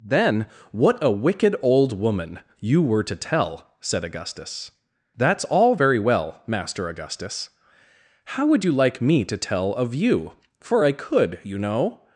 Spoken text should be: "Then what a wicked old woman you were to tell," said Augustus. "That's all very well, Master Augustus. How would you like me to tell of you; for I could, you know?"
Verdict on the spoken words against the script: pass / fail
pass